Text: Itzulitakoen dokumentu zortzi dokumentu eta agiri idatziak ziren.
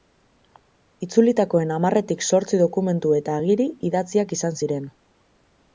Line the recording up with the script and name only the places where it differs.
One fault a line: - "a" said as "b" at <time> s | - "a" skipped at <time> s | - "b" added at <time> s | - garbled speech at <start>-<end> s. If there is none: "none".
- "dokumentu" said as "hamarretik" at 1.8 s
- "izan" added at 4.4 s